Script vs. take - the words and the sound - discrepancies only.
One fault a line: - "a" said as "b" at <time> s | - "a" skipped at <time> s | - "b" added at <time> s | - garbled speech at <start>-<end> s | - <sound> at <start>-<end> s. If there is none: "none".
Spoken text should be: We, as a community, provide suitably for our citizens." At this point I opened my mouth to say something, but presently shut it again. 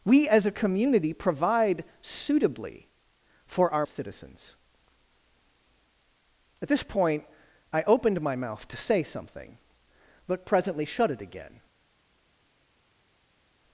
none